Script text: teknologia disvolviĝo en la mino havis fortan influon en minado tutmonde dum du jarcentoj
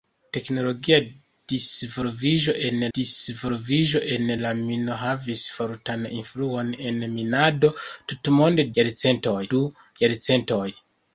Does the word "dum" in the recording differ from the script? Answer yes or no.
yes